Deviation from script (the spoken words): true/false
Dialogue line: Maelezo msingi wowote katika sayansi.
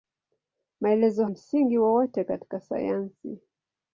false